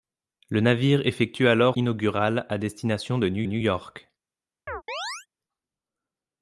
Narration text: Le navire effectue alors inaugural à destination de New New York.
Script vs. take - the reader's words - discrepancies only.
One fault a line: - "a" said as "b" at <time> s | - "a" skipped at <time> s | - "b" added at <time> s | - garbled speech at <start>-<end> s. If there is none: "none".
none